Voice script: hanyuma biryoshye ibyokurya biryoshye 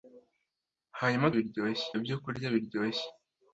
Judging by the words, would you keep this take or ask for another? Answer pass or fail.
pass